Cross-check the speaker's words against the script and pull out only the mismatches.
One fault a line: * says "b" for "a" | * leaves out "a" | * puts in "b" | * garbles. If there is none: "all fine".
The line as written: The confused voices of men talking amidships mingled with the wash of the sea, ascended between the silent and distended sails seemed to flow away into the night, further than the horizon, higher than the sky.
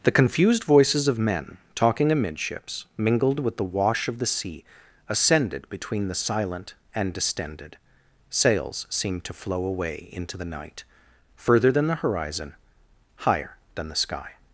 all fine